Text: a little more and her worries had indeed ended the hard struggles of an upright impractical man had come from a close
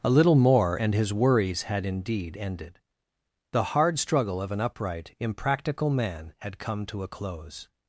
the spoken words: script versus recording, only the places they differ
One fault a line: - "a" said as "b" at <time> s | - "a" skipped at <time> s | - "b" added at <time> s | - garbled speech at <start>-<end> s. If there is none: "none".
- "her" said as "his" at 0.9 s
- "struggles" said as "struggle" at 4.0 s
- "from" said as "to" at 6.9 s